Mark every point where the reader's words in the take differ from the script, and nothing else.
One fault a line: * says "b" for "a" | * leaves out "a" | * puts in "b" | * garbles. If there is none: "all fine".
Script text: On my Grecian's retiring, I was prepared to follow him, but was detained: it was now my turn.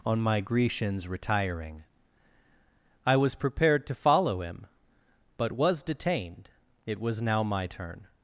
all fine